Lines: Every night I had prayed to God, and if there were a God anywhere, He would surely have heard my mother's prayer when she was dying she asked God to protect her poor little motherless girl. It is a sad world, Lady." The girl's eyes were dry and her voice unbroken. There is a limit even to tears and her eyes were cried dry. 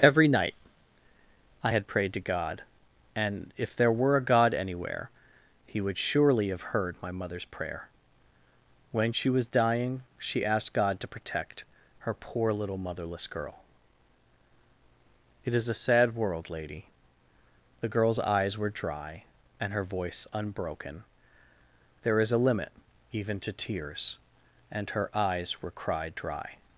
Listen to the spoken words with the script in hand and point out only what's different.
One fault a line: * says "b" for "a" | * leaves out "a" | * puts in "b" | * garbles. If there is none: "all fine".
all fine